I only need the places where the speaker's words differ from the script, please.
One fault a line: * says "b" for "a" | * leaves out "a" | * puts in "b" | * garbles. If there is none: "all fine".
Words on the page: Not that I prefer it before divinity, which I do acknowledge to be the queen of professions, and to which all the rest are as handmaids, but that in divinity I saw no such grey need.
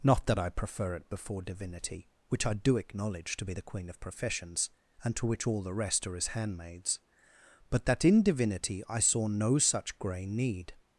all fine